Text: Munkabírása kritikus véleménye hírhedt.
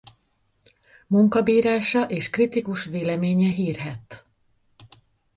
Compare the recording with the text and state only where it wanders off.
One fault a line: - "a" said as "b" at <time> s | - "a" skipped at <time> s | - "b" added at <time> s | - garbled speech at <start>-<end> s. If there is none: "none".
- "és" added at 2.0 s